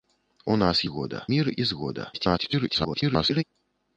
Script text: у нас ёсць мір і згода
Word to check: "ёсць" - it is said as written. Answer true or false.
false